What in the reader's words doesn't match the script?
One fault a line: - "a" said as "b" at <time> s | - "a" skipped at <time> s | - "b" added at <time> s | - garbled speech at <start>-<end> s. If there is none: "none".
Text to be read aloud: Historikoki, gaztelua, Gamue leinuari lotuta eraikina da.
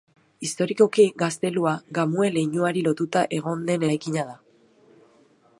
- "egon den" added at 3.4 s